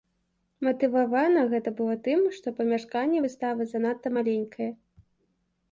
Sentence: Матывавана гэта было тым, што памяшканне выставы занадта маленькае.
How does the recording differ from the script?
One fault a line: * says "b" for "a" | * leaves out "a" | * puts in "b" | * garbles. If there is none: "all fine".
all fine